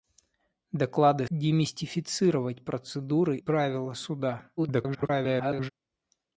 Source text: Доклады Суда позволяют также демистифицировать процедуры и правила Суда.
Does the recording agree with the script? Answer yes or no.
no